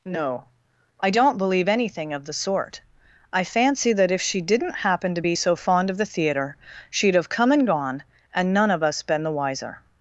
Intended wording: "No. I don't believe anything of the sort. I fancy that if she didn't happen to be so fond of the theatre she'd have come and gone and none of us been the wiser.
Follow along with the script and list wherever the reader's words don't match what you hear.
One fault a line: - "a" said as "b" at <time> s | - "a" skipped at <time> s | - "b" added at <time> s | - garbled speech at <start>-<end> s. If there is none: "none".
none